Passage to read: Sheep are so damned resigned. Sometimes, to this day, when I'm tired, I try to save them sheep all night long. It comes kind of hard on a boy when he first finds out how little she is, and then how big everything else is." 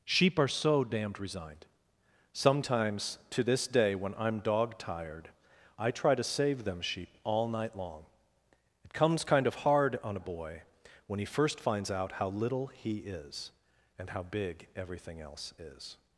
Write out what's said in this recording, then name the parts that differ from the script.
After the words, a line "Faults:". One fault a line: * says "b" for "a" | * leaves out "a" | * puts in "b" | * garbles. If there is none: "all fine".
Sheep are so damned resigned. Sometimes, to this day, when I'm dog tired, I try to save them sheep all night long. It comes kind of hard on a boy when he first finds out how little he is, and how big everything else is."
Faults:
* puts in "dog"
* says "he" for "she"
* leaves out "then"